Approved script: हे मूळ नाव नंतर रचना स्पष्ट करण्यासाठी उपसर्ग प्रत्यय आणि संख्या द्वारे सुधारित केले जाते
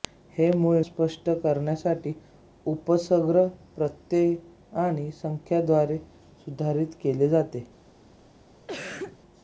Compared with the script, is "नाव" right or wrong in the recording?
wrong